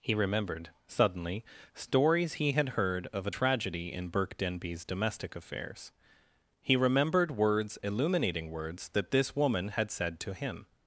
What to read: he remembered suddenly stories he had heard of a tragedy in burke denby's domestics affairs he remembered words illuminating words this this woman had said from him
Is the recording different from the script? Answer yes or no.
yes